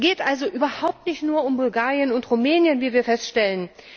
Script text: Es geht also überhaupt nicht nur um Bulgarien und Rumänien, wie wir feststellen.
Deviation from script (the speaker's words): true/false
false